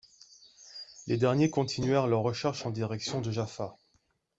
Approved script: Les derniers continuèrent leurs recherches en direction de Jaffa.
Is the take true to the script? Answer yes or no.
yes